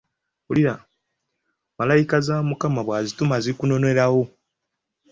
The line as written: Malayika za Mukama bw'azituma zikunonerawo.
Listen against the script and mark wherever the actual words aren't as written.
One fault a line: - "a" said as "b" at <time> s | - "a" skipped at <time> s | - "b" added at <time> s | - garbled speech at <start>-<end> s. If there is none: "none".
none